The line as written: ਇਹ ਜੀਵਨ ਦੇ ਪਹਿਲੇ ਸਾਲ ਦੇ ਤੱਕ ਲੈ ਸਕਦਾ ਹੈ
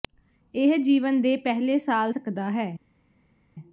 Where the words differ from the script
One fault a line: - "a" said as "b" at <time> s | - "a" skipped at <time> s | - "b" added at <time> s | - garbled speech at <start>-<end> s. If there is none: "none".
- "ਦੇ ਤੱਕ ਲੈ" skipped at 2.1 s